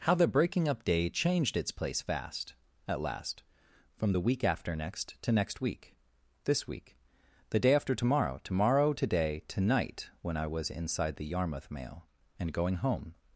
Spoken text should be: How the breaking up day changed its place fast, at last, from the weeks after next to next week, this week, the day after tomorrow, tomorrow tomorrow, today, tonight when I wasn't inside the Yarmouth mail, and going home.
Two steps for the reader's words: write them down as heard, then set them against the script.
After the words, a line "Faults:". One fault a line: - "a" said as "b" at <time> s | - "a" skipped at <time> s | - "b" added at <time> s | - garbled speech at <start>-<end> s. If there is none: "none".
How the breaking up day changed its place fast, at last, from the week after next to next week, this week, the day after tomorrow, tomorrow, today, tonight when I was inside the Yarmouth mail, and going home.
Faults:
- "weeks" said as "week" at 4.2 s
- "tomorrow" skipped at 8.9 s
- "wasn't" said as "was" at 10.4 s